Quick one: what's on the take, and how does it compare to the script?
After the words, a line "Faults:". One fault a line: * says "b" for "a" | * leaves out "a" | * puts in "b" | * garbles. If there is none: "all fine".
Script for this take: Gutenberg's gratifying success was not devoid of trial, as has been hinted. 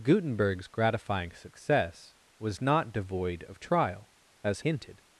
Gutenberg's gratifying success was not devoid of trial, as hinted.
Faults:
* leaves out "has been"